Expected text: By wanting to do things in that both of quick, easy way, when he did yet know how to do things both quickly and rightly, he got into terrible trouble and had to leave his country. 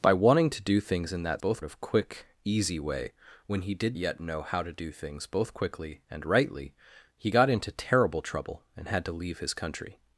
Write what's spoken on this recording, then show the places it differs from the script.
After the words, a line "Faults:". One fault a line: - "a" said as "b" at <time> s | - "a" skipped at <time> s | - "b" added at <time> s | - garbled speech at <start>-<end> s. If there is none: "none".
By wanting to do things in that both of quick, easy way, when he did yet know how to do things both quickly and rightly, he got into terrible trouble and had to leave his country.
Faults:
none